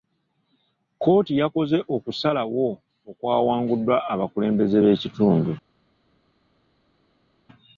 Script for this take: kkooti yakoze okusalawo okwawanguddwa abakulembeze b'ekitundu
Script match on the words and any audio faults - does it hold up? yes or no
yes